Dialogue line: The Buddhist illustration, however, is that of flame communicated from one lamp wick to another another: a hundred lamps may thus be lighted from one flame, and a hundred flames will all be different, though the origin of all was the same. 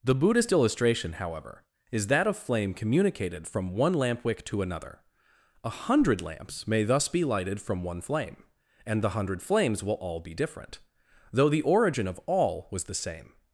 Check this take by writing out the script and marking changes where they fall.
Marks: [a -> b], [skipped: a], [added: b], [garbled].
The Buddhist illustration, however, is that of flame communicated from one lamp wick to another [skipped: another:] a hundred lamps may thus be lighted from one flame, and [a -> the] hundred flames will all be different, though the origin of all was the same.